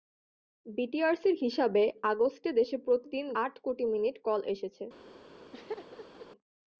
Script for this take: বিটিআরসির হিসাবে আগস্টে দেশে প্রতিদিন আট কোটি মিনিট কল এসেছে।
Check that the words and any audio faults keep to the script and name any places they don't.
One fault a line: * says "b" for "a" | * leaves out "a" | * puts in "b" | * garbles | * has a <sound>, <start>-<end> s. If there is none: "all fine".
* has a laugh, 5.5-6.3 s